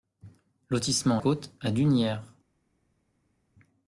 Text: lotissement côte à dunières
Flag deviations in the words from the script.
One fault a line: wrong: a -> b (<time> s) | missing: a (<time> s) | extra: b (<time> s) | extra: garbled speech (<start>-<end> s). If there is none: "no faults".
no faults